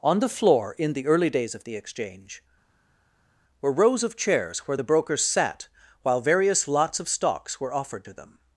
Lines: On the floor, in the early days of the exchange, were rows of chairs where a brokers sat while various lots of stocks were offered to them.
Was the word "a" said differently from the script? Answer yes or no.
yes